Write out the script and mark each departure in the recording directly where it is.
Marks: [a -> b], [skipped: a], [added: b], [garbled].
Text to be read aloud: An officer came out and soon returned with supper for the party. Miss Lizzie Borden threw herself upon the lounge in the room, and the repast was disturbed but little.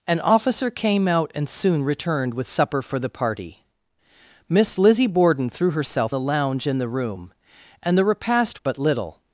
An officer came out and soon returned with supper for the party. Miss Lizzie Borden threw herself [skipped: upon] the lounge in the room, and the repast [skipped: was disturbed] but little.